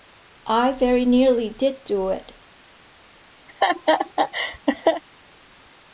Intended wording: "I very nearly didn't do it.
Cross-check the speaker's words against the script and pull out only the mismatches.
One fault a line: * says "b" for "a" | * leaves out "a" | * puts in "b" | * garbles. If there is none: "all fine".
* says "did" for "didn't"